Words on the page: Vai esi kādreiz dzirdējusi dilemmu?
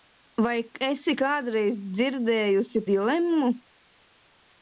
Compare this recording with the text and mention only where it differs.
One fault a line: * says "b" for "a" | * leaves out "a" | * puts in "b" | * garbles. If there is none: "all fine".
all fine